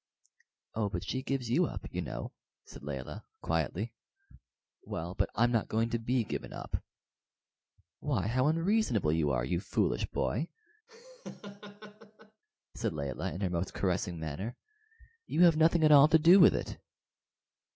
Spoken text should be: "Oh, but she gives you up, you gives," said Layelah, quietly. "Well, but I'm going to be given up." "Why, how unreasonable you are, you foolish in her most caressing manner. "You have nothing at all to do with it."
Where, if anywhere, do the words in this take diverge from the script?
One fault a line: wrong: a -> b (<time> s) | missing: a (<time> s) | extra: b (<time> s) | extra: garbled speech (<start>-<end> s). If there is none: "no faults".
wrong: gives -> know (2.0 s)
extra: not (5.5 s)
extra: boy said Layelah (10.1 s)